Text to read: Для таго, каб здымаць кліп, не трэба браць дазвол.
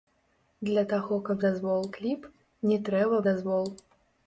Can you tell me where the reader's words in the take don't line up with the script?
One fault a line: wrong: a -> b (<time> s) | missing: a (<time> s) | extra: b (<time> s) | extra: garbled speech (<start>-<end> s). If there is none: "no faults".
wrong: здымаць -> дазвол (1.4 s)
missing: браць (3.2 s)